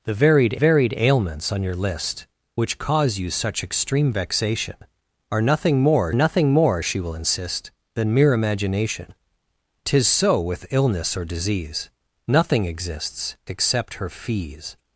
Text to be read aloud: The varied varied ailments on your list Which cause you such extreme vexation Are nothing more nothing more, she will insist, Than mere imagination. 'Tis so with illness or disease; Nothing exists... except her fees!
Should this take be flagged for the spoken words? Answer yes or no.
no